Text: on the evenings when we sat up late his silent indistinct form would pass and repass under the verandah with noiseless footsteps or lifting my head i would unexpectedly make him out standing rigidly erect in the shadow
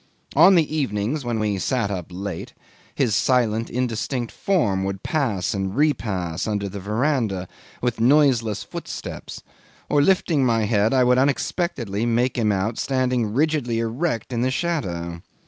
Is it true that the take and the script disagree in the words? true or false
false